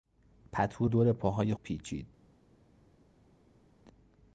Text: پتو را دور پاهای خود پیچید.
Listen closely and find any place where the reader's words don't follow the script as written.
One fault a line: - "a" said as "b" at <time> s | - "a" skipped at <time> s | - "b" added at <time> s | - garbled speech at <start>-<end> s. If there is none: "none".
- "را" skipped at 0.9 s
- "خود" skipped at 1.5 s